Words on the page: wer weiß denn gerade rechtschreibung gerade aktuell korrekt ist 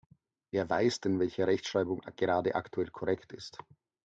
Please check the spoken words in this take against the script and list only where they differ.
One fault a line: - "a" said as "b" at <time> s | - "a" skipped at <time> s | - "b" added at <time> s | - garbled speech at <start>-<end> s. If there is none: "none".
- "gerade" said as "welche" at 1.2 s